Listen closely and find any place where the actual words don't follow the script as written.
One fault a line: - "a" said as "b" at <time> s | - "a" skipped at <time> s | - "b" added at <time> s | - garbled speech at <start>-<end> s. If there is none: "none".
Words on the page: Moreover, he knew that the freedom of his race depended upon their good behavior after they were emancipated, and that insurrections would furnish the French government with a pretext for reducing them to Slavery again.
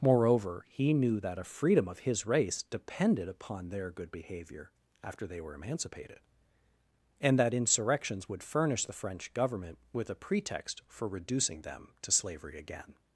- "the" said as "a" at 1.4 s